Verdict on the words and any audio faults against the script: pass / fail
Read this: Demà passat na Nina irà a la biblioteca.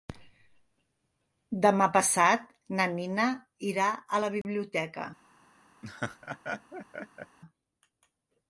fail